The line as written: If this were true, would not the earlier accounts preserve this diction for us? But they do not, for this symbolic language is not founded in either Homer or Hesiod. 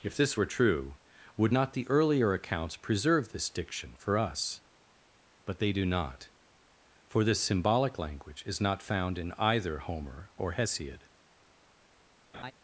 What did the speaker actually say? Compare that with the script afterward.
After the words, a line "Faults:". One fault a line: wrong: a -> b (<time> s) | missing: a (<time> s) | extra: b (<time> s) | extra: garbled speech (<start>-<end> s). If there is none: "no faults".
If this were true, would not the earlier accounts preserve this diction for us? But they do not, for this symbolic language is not found in either Homer or Hesiod.
Faults:
wrong: founded -> found (8.8 s)